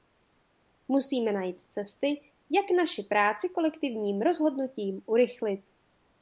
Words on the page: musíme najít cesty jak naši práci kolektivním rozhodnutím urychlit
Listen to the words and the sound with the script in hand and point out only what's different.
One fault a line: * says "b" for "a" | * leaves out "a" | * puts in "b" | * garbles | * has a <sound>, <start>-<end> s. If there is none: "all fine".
all fine